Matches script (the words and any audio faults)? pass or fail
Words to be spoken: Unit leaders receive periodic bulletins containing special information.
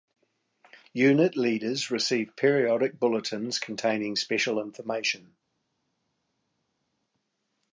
pass